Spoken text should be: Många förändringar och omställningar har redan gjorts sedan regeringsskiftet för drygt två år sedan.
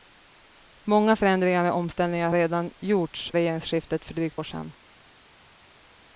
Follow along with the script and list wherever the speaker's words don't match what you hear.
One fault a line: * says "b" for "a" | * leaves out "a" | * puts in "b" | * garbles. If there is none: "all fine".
* leaves out "har"
* leaves out "sedan"
* leaves out "två"